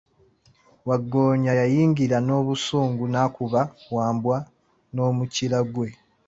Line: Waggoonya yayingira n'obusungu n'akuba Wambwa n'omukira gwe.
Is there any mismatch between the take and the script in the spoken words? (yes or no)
no